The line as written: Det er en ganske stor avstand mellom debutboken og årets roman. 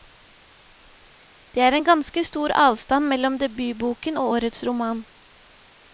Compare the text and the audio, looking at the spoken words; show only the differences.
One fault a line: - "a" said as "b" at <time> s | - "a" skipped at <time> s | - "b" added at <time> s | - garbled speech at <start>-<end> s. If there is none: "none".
none